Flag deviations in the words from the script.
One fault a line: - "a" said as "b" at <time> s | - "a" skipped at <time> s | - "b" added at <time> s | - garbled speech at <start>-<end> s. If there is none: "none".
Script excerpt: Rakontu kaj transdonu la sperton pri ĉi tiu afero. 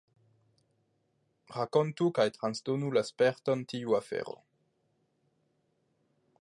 - "pri ĉi" skipped at 3.6 s